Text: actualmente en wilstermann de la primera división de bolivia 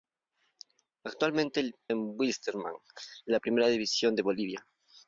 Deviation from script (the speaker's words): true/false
false